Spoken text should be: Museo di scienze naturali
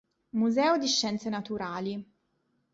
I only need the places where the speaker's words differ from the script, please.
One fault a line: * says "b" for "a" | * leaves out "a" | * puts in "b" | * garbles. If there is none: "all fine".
all fine